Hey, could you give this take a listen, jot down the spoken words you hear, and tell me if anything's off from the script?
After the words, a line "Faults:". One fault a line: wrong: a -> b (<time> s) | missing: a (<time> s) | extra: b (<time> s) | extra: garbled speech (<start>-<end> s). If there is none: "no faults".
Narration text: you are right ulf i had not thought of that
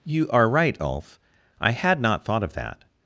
you are right ulf i had not thought of that
Faults:
no faults